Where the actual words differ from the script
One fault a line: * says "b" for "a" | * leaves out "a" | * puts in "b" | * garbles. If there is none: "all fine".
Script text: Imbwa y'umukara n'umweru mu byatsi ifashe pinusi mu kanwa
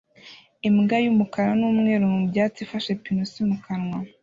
all fine